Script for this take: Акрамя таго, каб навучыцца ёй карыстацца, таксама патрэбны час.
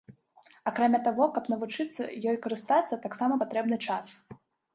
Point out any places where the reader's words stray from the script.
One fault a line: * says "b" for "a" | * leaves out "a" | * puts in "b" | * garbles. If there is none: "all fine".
all fine